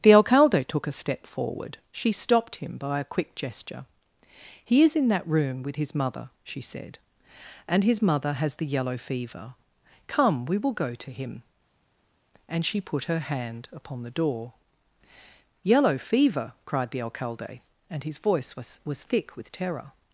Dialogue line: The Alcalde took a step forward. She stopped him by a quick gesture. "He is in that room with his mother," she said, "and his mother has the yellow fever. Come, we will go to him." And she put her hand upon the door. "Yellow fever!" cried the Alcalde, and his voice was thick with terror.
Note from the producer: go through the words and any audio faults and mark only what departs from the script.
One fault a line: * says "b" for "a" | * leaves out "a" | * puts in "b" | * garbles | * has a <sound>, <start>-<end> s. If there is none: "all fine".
* puts in "was"